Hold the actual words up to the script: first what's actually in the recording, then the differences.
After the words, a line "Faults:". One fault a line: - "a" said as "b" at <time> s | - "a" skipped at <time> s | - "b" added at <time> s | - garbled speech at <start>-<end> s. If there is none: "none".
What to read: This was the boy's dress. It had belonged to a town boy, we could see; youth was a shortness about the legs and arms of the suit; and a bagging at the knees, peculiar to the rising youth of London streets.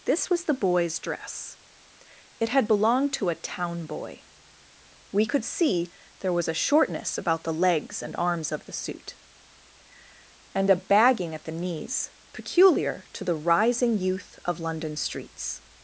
This was the boy's dress. It had belonged to a town boy, we could see; there was a shortness about the legs and arms of the suit; and a bagging at the knees, peculiar to the rising youth of London streets.
Faults:
- "youth" said as "there" at 6.2 s